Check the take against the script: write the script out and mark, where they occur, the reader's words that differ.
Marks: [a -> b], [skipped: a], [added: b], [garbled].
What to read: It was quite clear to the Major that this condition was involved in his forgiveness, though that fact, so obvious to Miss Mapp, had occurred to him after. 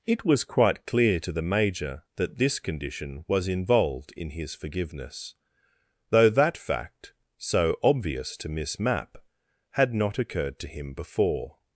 It was quite clear to the Major that this condition was involved in his forgiveness, though that fact, so obvious to Miss Mapp, had [added: not] occurred to him [after. -> before]